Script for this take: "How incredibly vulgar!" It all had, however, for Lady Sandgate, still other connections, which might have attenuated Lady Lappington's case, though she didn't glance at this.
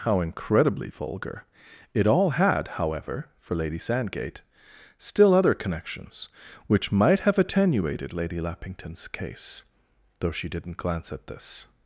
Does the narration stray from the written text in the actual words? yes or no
no